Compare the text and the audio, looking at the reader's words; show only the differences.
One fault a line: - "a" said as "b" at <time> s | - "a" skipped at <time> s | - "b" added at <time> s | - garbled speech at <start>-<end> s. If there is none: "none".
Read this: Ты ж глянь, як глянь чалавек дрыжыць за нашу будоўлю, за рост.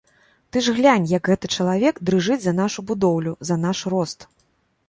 - "глянь" said as "гэты" at 1.3 s
- "наш" added at 3.7 s